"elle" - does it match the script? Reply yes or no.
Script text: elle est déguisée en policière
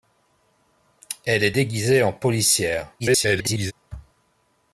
yes